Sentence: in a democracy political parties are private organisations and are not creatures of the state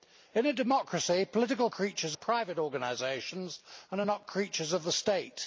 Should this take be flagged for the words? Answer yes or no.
yes